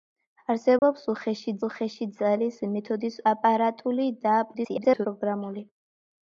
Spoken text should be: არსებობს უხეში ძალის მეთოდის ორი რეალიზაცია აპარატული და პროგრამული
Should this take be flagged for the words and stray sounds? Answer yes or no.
yes